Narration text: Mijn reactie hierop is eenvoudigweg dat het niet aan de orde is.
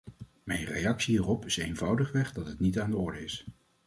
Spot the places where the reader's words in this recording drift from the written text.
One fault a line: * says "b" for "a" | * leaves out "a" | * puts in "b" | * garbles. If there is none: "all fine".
all fine